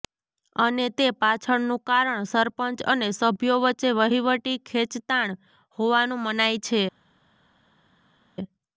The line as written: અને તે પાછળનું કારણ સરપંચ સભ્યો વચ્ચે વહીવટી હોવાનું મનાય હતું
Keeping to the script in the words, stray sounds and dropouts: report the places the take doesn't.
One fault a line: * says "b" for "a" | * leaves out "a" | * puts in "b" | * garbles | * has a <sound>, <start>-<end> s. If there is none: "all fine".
* puts in "અને"
* puts in "ખેંચતાણ"
* says "છે" for "હતું"